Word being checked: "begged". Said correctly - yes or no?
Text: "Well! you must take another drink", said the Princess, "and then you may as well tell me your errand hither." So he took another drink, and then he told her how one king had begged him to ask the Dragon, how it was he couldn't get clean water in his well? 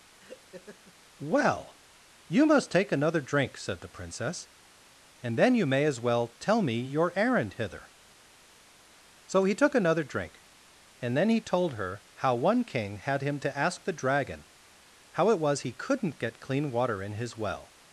no